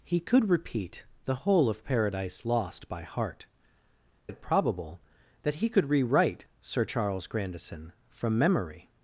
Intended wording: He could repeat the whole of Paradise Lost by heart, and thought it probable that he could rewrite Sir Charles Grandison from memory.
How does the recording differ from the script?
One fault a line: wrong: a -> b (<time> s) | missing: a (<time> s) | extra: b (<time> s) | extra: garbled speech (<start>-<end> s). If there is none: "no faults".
missing: and thought (3.5 s)